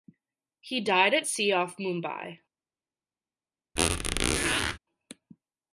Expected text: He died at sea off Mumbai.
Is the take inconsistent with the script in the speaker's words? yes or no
no